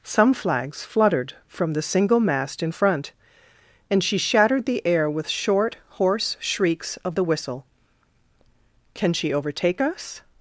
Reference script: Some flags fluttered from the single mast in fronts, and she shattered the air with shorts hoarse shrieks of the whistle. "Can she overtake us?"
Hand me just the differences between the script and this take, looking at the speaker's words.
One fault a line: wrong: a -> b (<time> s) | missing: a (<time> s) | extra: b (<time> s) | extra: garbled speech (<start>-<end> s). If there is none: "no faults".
wrong: fronts -> front (2.7 s)
wrong: shorts -> short (5.3 s)